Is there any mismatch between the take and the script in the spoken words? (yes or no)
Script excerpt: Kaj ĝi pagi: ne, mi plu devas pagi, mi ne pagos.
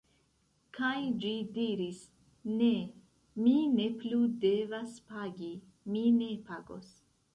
yes